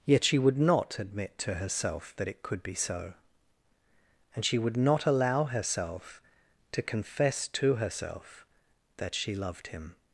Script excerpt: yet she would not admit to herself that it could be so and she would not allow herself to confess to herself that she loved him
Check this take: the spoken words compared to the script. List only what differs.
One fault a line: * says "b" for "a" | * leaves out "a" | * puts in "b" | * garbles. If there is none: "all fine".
all fine